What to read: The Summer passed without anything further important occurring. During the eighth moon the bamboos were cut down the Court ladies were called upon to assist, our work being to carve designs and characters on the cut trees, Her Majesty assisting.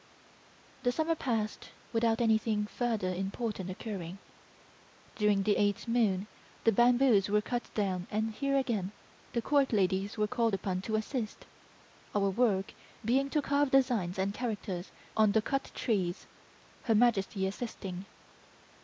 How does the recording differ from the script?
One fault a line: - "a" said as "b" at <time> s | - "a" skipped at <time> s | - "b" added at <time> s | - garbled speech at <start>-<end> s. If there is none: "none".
- "and here again" added at 8.1 s